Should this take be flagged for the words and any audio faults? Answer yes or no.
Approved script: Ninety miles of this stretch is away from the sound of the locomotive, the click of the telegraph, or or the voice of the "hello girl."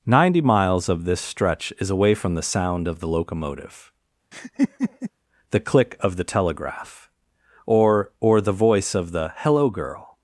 yes